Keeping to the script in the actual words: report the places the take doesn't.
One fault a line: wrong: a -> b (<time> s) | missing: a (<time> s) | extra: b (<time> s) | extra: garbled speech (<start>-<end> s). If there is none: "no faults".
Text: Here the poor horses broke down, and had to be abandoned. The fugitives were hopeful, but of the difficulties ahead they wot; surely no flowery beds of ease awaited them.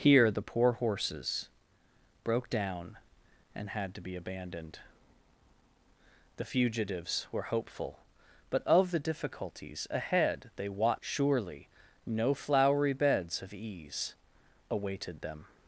no faults